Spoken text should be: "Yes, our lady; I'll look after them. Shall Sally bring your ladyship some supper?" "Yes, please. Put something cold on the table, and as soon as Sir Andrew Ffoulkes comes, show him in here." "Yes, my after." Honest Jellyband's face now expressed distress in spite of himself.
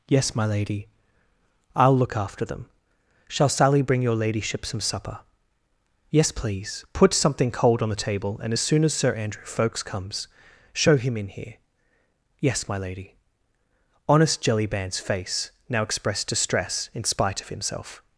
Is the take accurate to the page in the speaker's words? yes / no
no